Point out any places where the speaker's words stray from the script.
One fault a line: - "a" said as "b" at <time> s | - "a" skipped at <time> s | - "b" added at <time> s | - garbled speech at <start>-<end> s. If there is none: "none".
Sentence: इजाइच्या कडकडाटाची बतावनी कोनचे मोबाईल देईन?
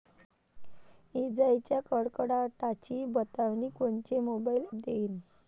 none